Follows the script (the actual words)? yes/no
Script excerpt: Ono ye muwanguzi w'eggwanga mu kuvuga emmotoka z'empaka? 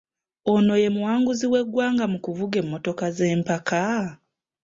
yes